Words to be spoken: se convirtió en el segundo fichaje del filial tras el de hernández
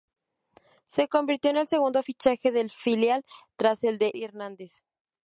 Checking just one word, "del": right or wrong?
right